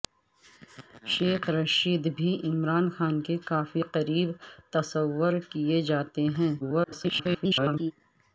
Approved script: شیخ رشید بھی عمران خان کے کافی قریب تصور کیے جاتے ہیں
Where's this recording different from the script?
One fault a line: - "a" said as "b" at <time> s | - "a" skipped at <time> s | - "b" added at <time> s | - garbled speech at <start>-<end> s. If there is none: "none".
- garbled speech at 6.6-7.9 s